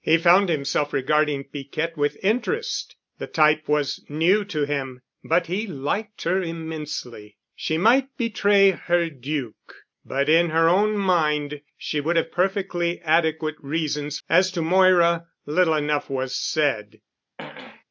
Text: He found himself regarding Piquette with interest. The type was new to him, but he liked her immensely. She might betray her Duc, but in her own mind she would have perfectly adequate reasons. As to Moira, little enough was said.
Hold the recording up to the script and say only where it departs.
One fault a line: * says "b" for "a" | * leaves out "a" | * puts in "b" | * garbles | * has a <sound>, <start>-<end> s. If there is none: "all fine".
* has a throat clearing, 17.4-17.8 s